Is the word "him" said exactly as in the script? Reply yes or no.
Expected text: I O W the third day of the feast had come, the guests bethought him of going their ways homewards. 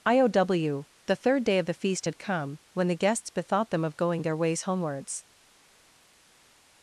no